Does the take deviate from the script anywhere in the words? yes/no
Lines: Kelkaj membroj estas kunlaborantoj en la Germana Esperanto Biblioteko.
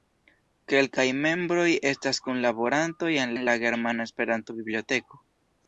yes